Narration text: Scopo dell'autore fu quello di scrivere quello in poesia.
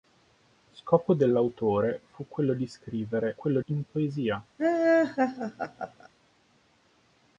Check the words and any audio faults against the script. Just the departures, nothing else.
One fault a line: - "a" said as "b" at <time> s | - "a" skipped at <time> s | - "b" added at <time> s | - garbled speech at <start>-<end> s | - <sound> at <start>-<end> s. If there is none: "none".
- laugh at 4.6-6.1 s